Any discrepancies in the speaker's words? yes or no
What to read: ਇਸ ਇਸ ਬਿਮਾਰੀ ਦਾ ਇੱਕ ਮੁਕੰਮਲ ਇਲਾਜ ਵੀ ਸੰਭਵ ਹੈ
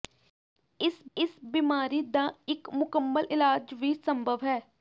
no